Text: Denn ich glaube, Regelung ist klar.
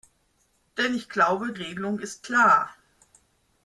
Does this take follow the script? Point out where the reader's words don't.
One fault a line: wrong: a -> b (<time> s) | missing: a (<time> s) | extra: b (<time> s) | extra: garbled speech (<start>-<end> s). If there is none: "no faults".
no faults